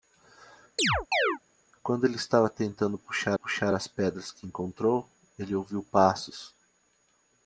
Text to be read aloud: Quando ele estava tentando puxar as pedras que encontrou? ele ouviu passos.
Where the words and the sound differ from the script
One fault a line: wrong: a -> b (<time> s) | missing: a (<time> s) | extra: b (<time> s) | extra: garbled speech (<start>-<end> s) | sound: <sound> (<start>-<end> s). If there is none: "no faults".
sound: chirp (0.8-1.4 s)
extra: puxar (3.3 s)